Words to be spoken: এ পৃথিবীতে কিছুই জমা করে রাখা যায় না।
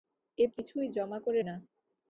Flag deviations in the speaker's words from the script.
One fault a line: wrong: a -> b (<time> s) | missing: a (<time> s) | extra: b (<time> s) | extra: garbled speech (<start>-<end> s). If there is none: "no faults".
missing: পৃথিবীতে (0.5 s)
missing: রাখা যায় (1.4 s)